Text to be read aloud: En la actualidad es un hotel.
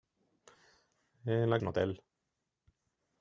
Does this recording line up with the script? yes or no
no